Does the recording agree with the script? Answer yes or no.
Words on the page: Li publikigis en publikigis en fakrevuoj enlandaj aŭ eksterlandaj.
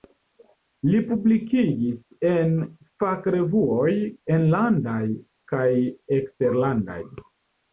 no